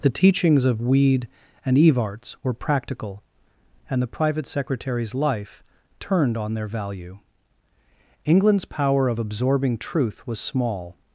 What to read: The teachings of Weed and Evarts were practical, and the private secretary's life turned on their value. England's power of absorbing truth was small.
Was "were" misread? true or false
false